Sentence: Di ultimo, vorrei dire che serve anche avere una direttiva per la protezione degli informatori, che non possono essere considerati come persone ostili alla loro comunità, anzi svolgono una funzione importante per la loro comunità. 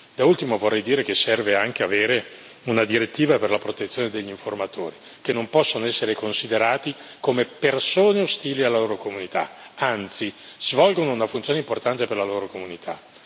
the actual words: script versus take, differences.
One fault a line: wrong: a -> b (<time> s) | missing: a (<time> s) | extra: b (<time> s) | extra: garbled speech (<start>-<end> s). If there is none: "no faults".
wrong: Di -> Da (0.1 s)